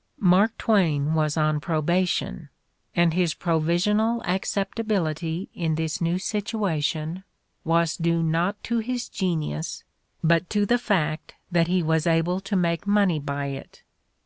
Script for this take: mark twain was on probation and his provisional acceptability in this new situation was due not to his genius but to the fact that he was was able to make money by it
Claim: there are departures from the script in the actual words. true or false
true